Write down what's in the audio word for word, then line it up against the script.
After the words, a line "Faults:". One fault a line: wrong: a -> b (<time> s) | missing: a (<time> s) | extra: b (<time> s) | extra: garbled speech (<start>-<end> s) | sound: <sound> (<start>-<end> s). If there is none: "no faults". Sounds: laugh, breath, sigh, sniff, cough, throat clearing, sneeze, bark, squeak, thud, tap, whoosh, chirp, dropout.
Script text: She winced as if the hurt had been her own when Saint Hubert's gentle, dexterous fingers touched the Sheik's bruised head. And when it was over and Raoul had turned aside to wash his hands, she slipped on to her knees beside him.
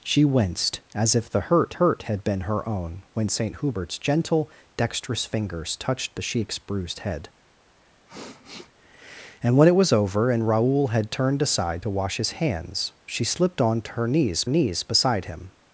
She winced as if the hurt hurt had been her own when Saint Hubert's gentle, dexterous fingers touched the Sheik's bruised head. And when it was over and Raoul had turned aside to wash his hands, she slipped on to her knees knees beside him.
Faults:
extra: hurt (1.7 s)
sound: sniff (8.1-8.7 s)
extra: knees (14.5 s)